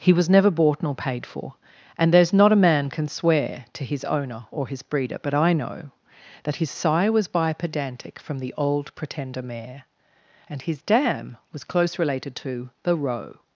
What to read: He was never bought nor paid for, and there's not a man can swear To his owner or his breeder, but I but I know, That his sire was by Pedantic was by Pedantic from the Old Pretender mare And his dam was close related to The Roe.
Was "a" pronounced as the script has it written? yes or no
yes